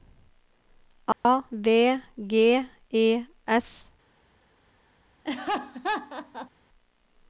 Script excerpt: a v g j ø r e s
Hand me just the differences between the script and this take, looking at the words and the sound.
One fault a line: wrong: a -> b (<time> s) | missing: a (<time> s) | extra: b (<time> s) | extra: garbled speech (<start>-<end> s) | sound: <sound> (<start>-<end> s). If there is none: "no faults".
sound: dropout (1.1-1.2 s)
missing: j ø r (2.6 s)
sound: laugh (5.2-6.5 s)